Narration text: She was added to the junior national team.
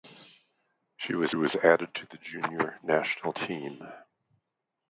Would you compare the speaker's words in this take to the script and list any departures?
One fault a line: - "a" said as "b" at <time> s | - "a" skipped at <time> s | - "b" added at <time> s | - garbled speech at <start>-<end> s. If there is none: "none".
- "was" added at 1.3 s